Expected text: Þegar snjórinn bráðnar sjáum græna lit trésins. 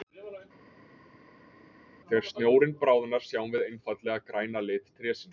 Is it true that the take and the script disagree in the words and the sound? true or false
true